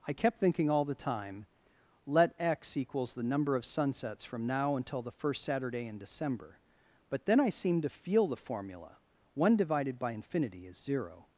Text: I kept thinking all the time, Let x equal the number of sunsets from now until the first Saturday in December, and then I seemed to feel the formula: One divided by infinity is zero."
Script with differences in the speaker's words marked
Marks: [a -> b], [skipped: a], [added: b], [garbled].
I kept thinking all the time, Let x [equal -> equals] the number of sunsets from now until the first Saturday in December, [and -> but] then I seemed to feel the formula: One divided by infinity is zero."